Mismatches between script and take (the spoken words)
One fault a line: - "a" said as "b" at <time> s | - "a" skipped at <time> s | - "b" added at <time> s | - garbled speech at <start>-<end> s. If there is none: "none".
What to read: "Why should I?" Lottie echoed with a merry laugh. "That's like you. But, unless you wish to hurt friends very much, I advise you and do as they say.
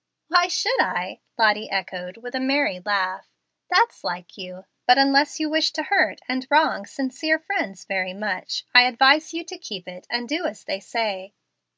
- "and wrong sincere" added at 6.3 s
- "to keep it" added at 9.4 s